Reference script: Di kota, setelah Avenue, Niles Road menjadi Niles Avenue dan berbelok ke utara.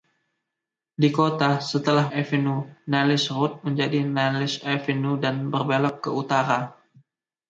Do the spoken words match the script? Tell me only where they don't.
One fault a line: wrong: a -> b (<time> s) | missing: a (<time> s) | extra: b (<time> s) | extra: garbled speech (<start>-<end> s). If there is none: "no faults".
no faults